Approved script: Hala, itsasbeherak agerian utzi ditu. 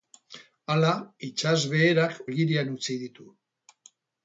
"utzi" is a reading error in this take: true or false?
false